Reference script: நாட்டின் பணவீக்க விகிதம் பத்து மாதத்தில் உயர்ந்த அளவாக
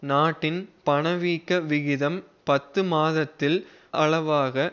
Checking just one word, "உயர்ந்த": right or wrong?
wrong